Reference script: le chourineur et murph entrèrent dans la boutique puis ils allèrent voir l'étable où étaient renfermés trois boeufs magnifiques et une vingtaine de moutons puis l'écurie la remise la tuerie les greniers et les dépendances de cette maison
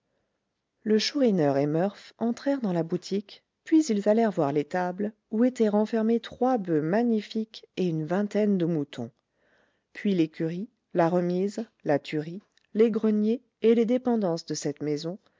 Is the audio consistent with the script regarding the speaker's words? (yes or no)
yes